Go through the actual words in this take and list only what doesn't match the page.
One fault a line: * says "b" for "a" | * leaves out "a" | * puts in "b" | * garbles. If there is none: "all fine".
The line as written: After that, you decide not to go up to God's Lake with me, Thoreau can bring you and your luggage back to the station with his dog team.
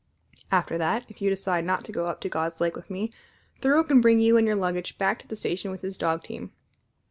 * puts in "if"